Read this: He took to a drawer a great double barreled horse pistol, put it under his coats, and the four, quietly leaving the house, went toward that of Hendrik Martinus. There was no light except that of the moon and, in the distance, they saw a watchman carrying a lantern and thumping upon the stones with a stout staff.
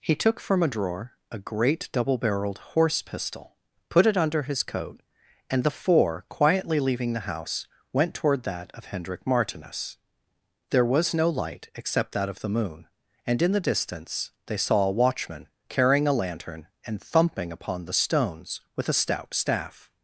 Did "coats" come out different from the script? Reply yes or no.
yes